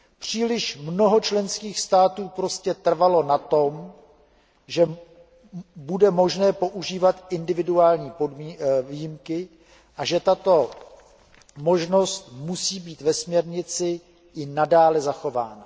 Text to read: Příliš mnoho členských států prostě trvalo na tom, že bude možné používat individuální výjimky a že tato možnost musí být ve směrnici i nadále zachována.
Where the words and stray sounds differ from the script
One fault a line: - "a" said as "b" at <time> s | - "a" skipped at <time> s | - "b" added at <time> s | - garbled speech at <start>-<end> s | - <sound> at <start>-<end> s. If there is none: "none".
none